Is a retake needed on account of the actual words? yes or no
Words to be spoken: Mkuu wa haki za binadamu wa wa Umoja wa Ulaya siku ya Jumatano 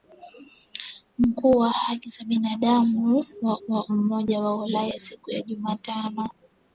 no